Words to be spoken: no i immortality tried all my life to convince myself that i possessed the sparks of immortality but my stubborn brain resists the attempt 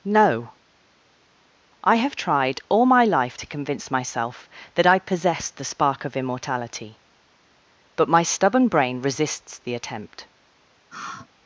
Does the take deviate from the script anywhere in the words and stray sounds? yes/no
yes